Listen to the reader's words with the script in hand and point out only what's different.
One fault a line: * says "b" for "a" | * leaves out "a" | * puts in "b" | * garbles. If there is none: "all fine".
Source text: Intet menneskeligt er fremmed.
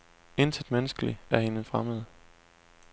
* puts in "hende"